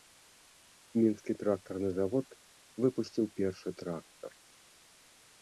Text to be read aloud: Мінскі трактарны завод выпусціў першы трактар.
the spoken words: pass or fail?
pass